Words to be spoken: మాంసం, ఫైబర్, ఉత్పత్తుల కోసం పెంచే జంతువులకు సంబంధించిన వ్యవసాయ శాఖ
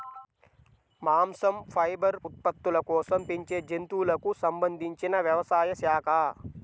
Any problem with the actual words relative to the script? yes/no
no